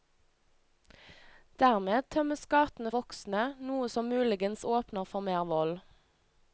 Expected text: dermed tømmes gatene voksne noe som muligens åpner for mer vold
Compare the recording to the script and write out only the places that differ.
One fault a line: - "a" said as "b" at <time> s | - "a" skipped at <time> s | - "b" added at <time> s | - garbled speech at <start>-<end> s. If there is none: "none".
none